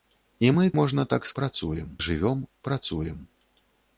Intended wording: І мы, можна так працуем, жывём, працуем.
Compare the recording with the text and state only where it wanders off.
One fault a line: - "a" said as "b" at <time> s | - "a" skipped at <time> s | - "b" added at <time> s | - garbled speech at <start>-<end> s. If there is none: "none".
none